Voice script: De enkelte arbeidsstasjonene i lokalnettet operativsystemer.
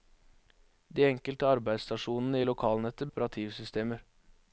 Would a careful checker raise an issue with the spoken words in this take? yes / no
no